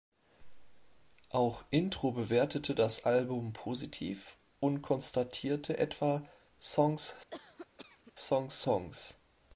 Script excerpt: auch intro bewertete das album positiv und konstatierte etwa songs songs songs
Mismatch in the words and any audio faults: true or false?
true